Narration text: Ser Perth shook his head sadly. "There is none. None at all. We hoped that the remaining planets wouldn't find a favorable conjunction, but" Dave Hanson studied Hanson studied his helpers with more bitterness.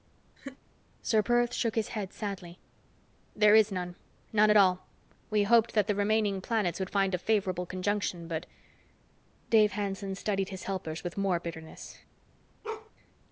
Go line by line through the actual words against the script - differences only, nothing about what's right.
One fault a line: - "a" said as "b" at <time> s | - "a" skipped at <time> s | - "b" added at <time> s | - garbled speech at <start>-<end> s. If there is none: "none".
- "wouldn't" said as "would" at 6.8 s
- "Hanson studied" skipped at 10.5 s